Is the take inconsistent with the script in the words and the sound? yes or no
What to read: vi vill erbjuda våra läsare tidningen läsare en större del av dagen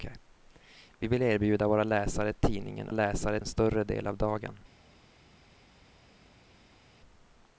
no